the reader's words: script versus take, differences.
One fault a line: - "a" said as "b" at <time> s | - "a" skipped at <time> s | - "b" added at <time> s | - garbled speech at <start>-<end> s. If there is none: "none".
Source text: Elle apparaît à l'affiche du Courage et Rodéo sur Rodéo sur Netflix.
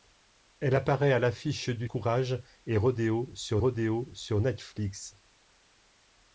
none